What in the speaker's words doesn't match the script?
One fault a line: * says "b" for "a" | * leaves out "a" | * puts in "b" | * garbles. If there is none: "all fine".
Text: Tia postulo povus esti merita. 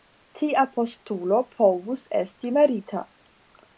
all fine